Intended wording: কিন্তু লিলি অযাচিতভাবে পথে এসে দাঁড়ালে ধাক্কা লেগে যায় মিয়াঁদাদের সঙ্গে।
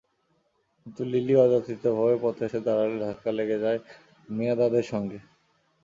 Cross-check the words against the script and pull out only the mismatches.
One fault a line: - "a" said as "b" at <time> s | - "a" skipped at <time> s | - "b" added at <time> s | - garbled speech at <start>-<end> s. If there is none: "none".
none